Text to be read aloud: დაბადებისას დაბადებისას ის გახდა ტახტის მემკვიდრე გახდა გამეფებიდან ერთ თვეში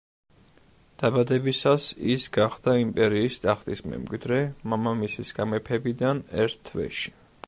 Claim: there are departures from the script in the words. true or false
true